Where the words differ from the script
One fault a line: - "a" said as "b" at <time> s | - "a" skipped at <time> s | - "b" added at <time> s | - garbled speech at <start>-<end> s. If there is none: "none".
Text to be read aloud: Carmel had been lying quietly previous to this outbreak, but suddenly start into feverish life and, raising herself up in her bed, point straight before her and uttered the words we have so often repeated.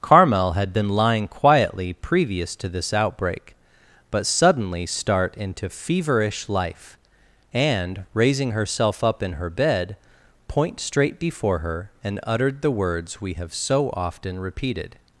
none